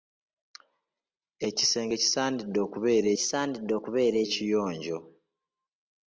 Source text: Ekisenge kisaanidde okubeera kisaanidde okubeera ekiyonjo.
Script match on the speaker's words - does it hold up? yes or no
yes